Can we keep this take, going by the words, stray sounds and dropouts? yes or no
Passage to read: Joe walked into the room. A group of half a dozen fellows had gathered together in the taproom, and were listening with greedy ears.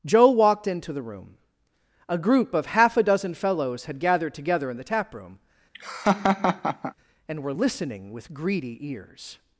no